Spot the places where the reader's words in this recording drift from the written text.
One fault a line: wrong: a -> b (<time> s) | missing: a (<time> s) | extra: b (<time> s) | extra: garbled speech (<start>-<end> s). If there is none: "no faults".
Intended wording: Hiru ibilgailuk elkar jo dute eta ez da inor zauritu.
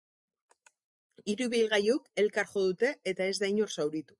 no faults